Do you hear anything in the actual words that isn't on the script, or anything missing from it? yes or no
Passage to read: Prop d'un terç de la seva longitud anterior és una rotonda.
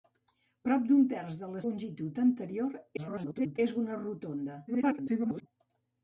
yes